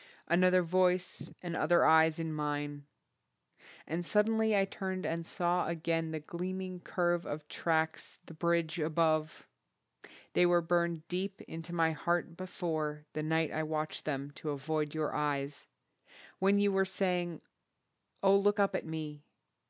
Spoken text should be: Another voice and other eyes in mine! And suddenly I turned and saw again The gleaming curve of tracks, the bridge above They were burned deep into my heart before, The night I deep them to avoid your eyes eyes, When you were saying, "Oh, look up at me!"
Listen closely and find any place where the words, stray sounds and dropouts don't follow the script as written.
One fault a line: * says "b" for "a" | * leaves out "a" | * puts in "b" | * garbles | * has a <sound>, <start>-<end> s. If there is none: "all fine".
* says "watched" for "deep"
* leaves out "eyes"